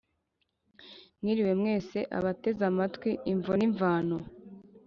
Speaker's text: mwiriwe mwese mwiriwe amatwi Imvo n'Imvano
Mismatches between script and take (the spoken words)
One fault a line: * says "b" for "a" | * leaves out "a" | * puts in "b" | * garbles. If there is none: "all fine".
* says "abateze" for "mwiriwe"